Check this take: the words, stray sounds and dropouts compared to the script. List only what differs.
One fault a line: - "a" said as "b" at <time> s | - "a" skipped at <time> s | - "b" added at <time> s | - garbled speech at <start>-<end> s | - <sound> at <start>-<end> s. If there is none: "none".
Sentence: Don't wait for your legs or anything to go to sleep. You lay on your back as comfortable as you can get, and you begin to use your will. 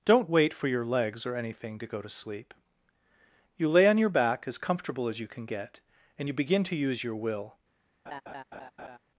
- laugh at 8.1-9.0 s